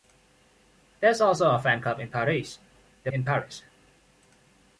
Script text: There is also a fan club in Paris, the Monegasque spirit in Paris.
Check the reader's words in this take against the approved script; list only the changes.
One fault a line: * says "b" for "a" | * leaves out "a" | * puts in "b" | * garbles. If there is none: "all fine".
* leaves out "Monegasque spirit"